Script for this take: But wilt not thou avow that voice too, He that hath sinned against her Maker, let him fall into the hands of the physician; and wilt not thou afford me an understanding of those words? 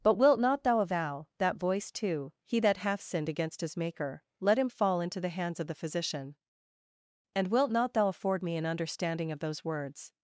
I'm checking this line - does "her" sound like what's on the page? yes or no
no